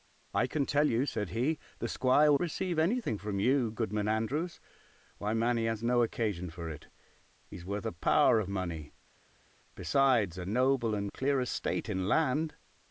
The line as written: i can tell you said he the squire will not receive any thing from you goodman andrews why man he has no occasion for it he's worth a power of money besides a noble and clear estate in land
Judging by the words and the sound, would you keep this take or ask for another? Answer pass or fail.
fail